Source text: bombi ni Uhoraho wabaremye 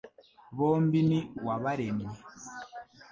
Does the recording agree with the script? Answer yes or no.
no